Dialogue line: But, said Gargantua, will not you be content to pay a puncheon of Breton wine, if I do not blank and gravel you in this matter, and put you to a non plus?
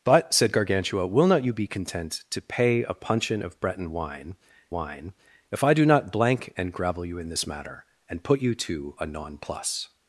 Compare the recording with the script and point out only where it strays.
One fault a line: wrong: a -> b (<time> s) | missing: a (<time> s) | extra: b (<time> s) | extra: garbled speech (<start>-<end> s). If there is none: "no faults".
extra: wine (4.7 s)